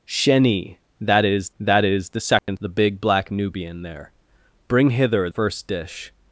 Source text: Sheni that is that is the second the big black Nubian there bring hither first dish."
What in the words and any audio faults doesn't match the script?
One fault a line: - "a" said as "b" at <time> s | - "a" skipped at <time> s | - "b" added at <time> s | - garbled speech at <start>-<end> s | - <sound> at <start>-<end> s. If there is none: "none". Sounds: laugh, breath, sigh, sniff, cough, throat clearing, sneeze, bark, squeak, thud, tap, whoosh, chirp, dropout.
- dropout at 2.4-2.5 s